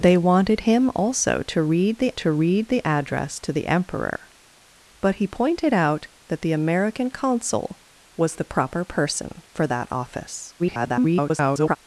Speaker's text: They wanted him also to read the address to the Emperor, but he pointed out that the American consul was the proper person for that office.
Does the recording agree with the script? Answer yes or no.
no